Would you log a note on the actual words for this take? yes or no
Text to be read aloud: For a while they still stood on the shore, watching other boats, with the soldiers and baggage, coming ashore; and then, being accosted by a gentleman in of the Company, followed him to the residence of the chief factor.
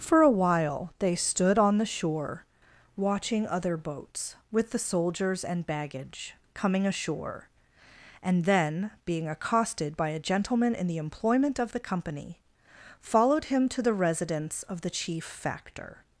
yes